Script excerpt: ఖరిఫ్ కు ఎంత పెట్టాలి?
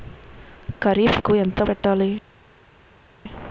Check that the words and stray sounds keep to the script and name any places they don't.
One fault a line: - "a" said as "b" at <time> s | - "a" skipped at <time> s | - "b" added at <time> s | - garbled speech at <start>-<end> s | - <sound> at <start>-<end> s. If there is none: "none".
none